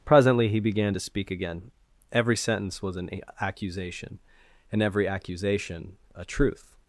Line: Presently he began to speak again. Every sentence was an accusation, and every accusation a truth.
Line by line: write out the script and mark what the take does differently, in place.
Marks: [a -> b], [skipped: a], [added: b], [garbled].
Presently he began to speak again. Every sentence was an accusation, and every accusation a truth.